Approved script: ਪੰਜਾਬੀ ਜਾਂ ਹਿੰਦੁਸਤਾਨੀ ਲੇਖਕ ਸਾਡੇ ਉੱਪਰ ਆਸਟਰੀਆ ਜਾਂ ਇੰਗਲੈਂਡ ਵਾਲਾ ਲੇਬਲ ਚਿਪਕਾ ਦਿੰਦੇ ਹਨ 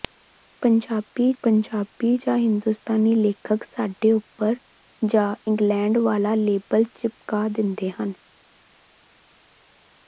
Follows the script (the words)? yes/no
no